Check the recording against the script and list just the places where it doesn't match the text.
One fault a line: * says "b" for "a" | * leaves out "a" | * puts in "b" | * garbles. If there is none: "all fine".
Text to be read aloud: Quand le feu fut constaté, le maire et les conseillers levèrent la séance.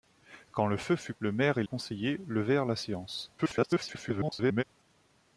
* leaves out "constaté"
* leaves out "les"
* garbles